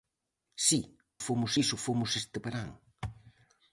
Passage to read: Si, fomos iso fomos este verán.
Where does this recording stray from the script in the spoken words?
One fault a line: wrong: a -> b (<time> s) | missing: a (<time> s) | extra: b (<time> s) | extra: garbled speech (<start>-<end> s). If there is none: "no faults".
no faults